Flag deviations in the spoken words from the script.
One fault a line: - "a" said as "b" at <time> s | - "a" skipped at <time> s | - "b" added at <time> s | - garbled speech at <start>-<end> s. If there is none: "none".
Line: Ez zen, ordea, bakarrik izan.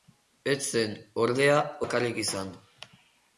none